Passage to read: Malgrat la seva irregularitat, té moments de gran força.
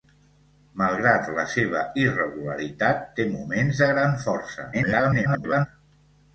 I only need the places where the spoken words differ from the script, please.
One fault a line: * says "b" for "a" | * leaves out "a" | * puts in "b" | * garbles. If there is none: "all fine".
* garbles